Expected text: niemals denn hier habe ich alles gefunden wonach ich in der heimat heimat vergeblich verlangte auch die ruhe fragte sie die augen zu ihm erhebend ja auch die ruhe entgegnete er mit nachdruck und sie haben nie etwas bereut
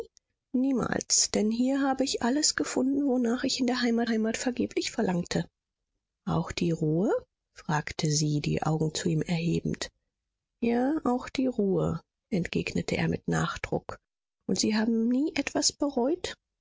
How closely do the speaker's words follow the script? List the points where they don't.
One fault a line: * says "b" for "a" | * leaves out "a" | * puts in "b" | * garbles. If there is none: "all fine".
all fine